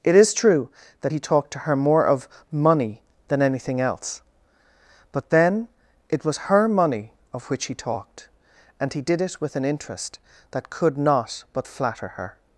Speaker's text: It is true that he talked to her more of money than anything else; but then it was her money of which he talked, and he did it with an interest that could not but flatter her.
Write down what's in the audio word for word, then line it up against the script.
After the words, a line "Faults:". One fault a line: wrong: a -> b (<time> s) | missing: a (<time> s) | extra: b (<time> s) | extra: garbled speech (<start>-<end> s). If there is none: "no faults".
It is true that he talked to her more of money than anything else; but then it was her money of which he talked, and he did it with an interest that could not but flatter her.
Faults:
no faults